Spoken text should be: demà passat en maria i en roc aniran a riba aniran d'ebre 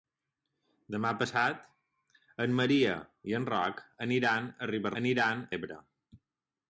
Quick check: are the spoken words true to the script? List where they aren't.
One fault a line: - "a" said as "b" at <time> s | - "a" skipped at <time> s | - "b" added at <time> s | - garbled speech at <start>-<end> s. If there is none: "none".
none